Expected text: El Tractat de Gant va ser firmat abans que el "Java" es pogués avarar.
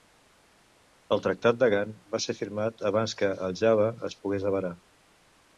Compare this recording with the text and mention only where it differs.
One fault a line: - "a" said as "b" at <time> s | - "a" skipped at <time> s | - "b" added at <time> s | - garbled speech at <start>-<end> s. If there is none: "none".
none